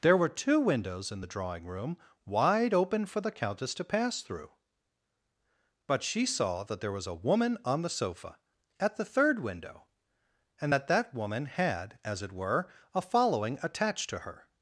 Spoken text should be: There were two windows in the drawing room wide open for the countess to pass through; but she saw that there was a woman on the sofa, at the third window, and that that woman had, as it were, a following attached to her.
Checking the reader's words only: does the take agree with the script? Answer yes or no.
yes